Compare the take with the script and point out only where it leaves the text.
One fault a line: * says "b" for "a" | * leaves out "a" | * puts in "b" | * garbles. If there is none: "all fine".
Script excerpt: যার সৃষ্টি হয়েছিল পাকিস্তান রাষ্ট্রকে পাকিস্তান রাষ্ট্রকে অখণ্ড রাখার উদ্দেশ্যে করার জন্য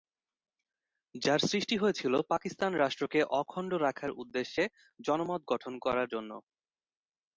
* leaves out "পাকিস্তান রাষ্ট্রকে"
* puts in "জনমত গঠন"